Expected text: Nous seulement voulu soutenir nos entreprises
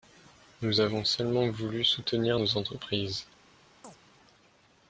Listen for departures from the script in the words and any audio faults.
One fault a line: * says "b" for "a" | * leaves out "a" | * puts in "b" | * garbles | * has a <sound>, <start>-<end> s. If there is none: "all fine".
* puts in "avons"
* has a chirp, 3.8-4.0 s